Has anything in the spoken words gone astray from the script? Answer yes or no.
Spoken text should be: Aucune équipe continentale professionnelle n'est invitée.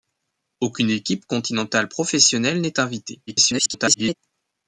yes